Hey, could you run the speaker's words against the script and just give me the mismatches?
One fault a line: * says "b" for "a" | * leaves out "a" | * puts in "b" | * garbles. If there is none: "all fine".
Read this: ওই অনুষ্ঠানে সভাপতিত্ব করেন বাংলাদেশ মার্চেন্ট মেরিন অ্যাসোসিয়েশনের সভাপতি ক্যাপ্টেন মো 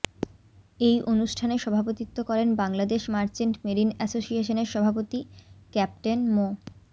* says "এই" for "ওই"